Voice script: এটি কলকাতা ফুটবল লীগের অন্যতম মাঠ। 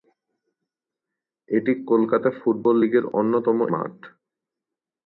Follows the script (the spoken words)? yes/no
yes